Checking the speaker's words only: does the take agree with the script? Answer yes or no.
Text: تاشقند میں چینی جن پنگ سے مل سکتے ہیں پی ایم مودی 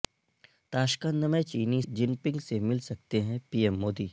yes